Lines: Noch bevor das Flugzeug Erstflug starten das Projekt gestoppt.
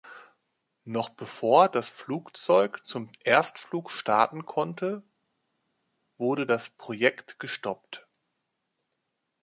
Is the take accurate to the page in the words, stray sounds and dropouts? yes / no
no